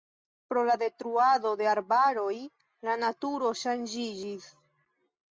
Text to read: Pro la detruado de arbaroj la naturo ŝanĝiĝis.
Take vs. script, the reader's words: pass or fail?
pass